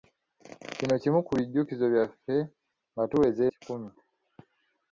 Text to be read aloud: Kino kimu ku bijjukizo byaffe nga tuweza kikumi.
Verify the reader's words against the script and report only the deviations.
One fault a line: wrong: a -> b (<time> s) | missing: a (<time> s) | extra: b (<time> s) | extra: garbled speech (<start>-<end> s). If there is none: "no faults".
no faults